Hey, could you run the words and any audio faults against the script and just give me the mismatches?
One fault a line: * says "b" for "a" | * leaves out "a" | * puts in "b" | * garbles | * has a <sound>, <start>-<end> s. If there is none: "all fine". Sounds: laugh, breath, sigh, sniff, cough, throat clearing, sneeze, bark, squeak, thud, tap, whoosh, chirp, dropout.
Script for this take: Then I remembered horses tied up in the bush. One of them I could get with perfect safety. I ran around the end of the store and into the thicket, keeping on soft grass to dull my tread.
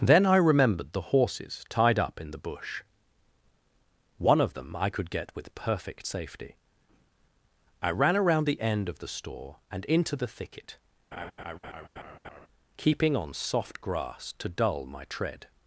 * puts in "the"
* has a laugh, 11.1-12.5 s